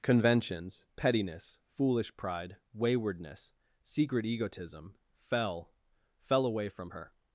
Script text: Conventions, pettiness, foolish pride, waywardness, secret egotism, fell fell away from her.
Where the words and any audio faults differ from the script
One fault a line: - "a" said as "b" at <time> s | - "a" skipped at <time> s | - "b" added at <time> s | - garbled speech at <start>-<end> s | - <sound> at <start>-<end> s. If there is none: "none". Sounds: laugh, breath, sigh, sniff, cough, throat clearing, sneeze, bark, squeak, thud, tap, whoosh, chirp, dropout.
none